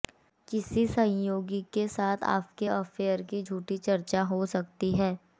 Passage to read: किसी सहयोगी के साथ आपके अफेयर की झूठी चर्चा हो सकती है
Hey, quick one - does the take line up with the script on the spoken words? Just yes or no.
yes